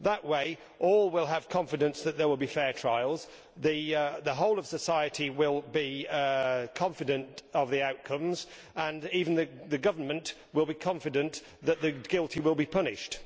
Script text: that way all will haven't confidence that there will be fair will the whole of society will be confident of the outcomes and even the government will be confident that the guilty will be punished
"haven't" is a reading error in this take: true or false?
true